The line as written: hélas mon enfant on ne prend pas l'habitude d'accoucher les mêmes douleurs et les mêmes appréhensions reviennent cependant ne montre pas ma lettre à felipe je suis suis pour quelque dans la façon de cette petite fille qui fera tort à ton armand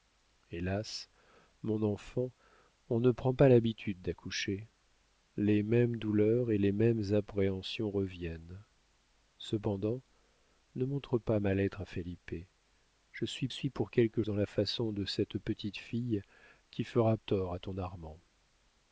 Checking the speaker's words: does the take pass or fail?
pass